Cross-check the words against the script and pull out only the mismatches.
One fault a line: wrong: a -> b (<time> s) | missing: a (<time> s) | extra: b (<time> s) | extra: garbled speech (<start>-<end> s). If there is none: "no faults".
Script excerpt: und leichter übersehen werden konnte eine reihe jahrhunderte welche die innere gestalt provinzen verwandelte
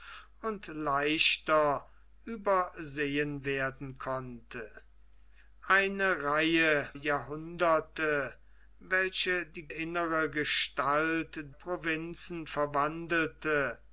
no faults